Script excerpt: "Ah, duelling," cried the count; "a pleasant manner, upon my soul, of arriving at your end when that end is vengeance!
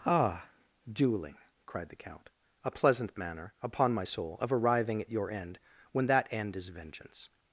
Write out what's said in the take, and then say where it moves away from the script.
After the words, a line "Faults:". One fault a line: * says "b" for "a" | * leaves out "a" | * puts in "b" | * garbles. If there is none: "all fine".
"Ah, duelling," cried the count; "a pleasant manner, upon my soul, of arriving at your end when that end is vengeance!
Faults:
all fine